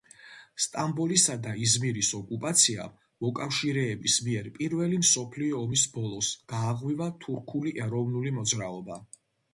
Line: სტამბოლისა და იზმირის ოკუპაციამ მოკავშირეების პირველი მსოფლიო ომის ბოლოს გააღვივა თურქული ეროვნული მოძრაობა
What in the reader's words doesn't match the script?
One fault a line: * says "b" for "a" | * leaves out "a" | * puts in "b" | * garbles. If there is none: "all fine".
* puts in "მიერ"